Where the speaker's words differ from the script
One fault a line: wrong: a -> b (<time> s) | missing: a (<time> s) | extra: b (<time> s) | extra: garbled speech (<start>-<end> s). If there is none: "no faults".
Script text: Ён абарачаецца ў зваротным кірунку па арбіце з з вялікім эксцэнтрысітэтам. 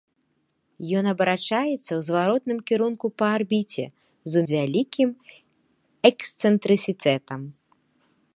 no faults